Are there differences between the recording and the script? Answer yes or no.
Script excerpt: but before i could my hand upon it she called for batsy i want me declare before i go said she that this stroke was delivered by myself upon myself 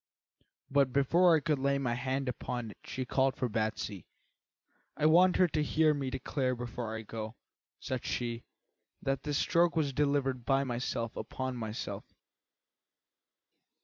yes